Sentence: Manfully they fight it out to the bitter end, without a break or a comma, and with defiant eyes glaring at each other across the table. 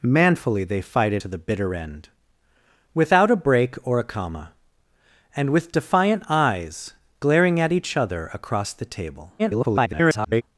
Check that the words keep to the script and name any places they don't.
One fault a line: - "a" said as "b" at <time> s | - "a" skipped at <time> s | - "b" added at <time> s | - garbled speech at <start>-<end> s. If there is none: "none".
- "out" skipped at 1.2 s
- garbled speech at 9.4-10.4 s